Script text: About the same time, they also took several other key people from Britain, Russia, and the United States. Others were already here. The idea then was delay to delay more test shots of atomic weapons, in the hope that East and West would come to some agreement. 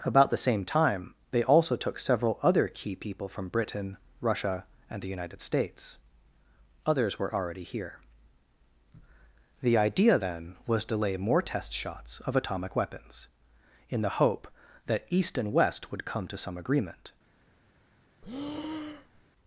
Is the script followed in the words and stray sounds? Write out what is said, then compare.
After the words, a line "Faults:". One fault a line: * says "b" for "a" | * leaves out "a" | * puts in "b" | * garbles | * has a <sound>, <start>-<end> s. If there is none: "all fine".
About the same time, they also took several other key people from Britain, Russia, and the United States. Others were already here. The idea then was to lay more test shots of atomic weapons, in the hope that East and West would come to some agreement.
Faults:
* leaves out "delay"
* says "lay" for "delay"
* has a breath, 18.2-19.2 s